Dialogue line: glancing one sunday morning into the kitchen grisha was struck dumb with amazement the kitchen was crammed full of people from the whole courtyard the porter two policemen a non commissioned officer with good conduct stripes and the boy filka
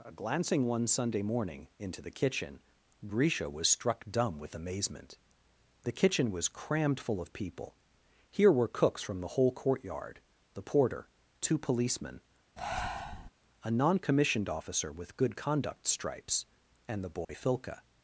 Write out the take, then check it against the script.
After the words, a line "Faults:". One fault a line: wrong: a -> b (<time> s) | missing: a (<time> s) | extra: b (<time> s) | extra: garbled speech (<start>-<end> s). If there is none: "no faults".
glancing one sunday morning into the kitchen grisha was struck dumb with amazement the kitchen was crammed full of people here were cooks from the whole courtyard the porter two policemen a non commissioned officer with good conduct stripes and the boy filka
Faults:
extra: here were cooks (8.3 s)